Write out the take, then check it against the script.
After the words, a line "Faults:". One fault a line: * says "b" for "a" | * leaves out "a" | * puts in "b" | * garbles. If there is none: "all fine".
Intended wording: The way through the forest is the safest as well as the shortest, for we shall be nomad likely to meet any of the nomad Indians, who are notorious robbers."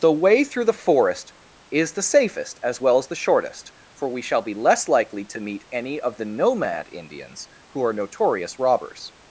The way through the forest is the safest as well as the shortest, for we shall be less likely to meet any of the nomad Indians, who are notorious robbers."
Faults:
* says "less" for "nomad"